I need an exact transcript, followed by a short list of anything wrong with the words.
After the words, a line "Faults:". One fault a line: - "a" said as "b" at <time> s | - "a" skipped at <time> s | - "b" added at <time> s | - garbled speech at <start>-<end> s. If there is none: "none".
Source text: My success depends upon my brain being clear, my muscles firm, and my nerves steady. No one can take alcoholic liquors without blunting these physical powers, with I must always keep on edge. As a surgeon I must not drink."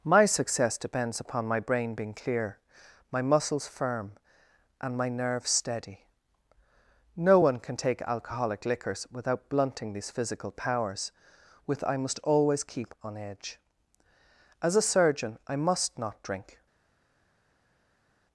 My success depends upon my brain being clear, my muscles firm, and my nerves steady. No one can take alcoholic liquors without blunting these physical powers, with I must always keep on edge. As a surgeon I must not drink."
Faults:
none